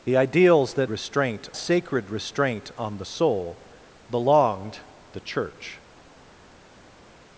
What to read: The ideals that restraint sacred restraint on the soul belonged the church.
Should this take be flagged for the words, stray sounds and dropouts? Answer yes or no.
no